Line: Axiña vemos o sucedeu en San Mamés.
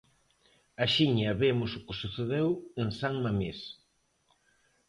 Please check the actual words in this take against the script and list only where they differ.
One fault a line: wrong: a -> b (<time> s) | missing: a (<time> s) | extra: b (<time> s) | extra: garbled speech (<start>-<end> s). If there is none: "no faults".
extra: que (1.9 s)